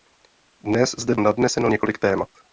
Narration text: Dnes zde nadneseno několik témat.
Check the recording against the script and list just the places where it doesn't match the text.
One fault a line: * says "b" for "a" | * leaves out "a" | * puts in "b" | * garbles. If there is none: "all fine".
all fine